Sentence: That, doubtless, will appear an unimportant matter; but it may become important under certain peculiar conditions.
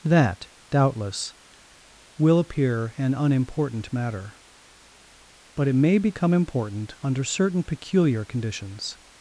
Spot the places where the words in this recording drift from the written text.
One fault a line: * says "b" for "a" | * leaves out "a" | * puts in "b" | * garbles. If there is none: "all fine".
all fine